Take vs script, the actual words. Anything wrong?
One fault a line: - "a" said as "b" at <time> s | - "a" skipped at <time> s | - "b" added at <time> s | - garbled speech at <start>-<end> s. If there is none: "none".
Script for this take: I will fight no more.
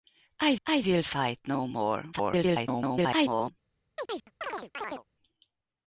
- "I" added at 0.7 s
- garbled speech at 2.1-3.5 s